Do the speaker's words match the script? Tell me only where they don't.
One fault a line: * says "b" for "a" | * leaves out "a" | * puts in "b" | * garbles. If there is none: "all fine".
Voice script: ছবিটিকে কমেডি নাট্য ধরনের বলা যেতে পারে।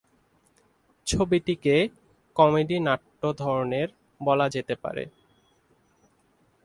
all fine